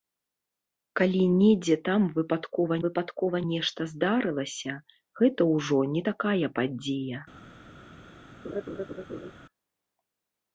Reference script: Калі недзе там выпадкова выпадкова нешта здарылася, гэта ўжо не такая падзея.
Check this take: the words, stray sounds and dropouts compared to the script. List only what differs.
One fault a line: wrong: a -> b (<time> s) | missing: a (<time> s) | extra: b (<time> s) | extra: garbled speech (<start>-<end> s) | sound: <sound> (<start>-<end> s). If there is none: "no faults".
sound: laugh (8.4-9.3 s)